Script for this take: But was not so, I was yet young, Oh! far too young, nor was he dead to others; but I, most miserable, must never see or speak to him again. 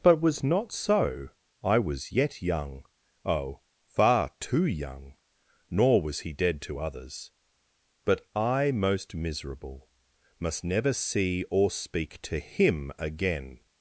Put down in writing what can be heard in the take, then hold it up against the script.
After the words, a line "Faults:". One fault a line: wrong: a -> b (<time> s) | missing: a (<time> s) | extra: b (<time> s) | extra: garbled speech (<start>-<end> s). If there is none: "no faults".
But was not so, I was yet young, Oh! far too young, nor was he dead to others; but I, most miserable, must never see or speak to him again.
Faults:
no faults